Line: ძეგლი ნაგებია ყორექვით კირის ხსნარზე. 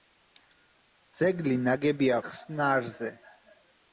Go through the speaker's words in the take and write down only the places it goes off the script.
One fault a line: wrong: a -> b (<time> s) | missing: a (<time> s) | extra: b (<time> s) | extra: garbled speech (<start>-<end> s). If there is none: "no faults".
missing: ყორექვით კირის (2.2 s)